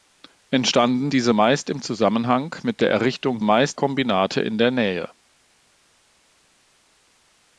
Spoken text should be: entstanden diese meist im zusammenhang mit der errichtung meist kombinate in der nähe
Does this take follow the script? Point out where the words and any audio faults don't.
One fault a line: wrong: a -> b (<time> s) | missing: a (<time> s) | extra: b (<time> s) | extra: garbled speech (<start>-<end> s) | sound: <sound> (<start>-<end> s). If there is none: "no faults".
no faults